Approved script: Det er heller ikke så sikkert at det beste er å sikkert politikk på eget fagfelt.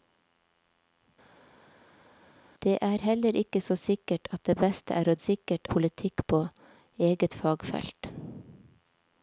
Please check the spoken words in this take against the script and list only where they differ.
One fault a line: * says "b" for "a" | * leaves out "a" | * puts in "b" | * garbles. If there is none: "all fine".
all fine